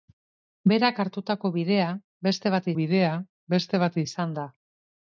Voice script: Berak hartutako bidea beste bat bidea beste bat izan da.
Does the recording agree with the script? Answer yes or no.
yes